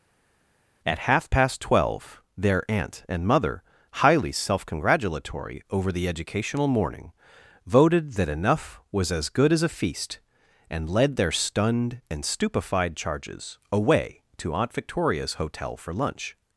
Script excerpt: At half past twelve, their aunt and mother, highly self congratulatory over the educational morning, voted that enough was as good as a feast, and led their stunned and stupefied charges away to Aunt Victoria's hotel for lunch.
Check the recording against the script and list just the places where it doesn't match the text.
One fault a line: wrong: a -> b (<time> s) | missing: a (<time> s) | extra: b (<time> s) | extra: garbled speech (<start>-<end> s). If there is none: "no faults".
no faults